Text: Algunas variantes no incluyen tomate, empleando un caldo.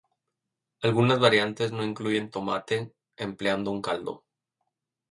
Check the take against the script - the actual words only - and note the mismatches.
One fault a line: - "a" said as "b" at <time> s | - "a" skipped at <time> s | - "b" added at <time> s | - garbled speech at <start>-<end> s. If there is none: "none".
none